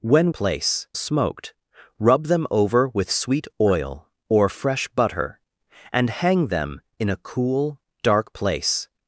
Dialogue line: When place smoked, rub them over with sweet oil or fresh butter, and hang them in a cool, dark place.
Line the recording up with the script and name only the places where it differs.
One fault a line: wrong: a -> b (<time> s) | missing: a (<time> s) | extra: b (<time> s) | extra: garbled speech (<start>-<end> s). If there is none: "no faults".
no faults